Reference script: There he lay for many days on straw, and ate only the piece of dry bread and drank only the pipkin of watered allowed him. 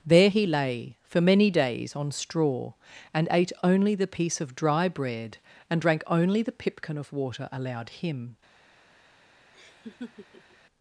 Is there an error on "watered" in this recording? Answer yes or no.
yes